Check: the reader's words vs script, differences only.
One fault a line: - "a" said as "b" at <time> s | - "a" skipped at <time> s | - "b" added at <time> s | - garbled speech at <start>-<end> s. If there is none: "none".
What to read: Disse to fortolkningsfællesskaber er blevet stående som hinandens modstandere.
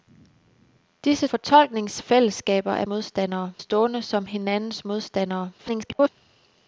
- "to" skipped at 1.3 s
- "blevet" said as "modstandere" at 2.9 s
- garbled speech at 5.6-6.1 s